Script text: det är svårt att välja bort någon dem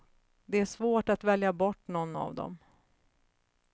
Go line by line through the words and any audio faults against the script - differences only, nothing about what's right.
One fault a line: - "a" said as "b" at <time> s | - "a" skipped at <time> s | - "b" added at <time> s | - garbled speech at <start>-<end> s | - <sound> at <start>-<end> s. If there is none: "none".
- "av" added at 2.2 s